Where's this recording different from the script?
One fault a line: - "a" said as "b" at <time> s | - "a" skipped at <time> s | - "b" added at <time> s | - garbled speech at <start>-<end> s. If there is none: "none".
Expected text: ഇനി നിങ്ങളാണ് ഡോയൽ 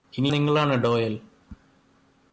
none